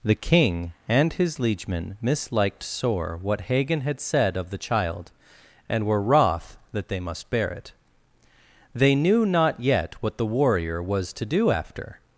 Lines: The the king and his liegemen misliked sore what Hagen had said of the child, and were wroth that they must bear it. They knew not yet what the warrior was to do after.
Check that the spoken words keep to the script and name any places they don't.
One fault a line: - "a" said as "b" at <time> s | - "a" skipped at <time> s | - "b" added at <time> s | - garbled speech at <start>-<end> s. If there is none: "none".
- "the" skipped at 0.1 s